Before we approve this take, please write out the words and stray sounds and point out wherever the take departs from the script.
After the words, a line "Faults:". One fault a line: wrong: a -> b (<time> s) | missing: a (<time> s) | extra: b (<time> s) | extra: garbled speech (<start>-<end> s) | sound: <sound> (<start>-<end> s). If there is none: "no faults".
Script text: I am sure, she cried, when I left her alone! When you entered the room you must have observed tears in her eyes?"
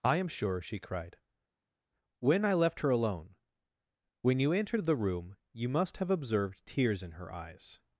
I am sure, she cried, when I left her alone! When you entered the room you must have observed tears in her eyes?"
Faults:
no faults